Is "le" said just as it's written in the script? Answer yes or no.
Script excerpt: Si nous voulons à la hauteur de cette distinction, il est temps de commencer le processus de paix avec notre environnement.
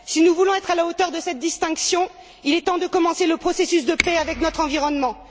yes